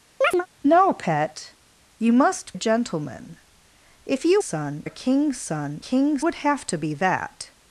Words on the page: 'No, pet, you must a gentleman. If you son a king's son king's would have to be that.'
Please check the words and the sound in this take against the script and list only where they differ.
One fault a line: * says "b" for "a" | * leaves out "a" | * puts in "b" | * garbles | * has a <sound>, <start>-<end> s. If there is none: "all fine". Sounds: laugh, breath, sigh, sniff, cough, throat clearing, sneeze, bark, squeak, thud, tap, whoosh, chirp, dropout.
* has a chirp, 0.2-0.5 s